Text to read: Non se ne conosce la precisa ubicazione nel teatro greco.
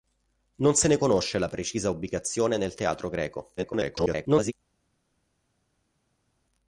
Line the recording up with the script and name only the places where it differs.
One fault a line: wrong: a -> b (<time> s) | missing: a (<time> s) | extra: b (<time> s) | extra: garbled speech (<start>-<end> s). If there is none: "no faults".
extra: garbled speech (3.6-4.5 s)